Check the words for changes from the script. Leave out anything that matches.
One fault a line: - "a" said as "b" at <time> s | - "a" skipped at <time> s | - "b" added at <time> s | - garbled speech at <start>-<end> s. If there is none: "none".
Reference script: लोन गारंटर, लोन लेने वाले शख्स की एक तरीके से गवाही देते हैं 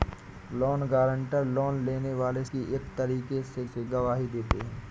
- "शख्स" skipped at 2.4 s
- "से" added at 3.6 s